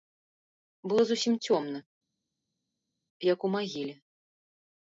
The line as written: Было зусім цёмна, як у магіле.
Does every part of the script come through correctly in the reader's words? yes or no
yes